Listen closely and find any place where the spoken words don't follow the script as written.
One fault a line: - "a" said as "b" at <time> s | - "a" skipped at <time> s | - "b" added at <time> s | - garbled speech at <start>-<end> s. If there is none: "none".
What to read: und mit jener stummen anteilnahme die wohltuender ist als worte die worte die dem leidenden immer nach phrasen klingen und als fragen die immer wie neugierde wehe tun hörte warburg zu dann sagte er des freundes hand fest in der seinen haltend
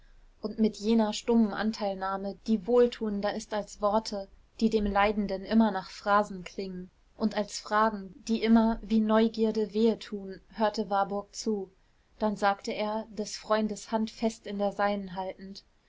- "worte die" skipped at 4.7 s